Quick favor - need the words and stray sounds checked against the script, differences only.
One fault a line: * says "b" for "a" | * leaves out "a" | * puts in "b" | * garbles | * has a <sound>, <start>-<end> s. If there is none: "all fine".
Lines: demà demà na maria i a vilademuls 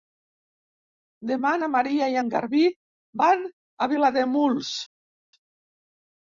* leaves out "demà"
* puts in "en garbí van"